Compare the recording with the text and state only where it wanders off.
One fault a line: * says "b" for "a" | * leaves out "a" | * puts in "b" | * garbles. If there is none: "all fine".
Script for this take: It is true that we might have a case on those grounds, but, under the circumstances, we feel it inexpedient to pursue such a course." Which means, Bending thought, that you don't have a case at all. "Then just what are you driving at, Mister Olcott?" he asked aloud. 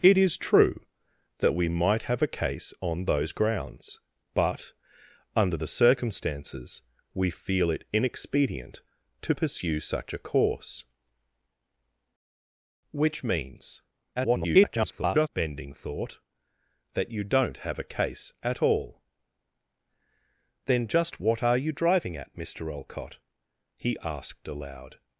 * garbles